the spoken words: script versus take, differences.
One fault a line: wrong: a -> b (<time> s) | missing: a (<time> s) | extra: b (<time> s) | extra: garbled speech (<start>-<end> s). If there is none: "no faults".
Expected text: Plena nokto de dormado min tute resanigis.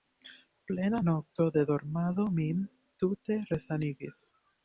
no faults